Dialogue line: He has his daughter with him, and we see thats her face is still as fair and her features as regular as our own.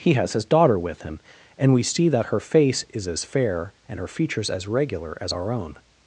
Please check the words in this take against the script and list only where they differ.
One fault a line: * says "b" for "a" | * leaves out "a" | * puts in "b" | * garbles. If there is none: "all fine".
* says "that" for "thats"
* leaves out "still"